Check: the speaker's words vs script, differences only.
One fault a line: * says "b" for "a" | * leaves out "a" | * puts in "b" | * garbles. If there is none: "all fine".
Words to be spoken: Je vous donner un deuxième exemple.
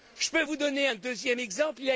* puts in "peux"